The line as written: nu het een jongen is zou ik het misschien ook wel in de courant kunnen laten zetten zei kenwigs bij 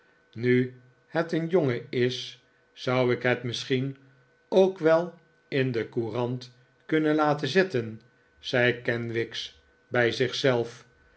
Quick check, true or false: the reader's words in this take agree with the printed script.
true